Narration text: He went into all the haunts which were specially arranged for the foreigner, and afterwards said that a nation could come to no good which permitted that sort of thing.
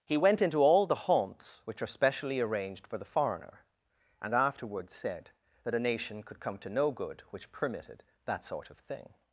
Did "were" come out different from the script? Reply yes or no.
yes